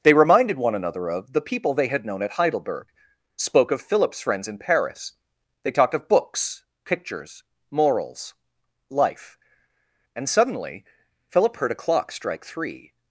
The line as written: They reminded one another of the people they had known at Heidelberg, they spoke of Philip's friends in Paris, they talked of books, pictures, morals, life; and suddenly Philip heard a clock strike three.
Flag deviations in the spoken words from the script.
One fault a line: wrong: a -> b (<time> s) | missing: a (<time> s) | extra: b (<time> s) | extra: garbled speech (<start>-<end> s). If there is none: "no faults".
missing: they (2.9 s)